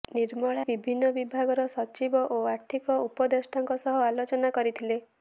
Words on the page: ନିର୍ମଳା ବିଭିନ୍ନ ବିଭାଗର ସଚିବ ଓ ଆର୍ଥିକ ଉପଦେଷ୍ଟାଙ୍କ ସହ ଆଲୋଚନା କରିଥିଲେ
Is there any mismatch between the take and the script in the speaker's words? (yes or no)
no